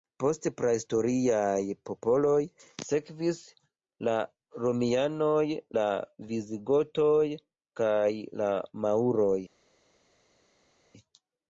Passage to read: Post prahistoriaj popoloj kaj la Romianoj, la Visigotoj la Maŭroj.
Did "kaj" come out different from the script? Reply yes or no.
yes